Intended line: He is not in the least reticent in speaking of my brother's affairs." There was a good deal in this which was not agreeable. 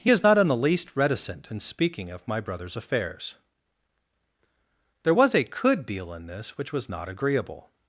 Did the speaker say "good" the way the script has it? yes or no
no